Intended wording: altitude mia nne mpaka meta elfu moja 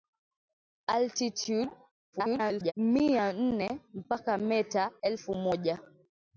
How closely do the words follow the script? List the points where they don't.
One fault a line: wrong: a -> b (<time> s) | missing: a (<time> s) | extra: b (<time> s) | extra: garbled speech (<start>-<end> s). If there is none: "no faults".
extra: garbled speech (2.1-2.7 s)